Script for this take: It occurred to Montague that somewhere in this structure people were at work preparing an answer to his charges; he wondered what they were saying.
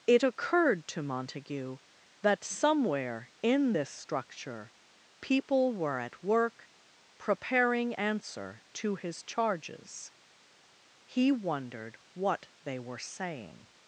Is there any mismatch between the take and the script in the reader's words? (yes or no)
yes